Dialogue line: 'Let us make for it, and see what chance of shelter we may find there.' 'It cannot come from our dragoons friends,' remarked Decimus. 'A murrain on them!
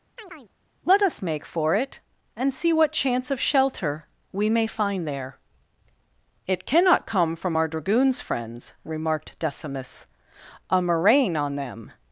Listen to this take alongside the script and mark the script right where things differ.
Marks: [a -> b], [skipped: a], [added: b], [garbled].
'Let us make for it, and see what chance of shelter we may find there.' 'It cannot come from our dragoons friends,' remarked Decimus. 'A murrain on them!